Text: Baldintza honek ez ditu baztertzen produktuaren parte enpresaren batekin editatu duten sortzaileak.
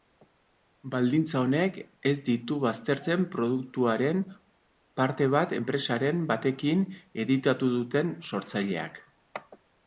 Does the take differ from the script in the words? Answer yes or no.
yes